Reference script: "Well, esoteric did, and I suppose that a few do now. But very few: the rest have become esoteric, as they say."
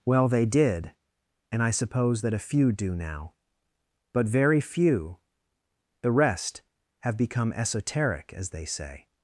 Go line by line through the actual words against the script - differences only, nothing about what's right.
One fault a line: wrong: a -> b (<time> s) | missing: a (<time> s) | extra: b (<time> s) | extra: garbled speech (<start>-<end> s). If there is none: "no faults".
wrong: esoteric -> they (0.3 s)